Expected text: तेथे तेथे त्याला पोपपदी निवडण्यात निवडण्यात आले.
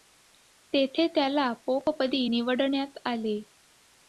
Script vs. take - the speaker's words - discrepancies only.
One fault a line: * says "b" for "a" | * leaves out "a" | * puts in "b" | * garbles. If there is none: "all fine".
* leaves out "तेथे"
* leaves out "निवडण्यात"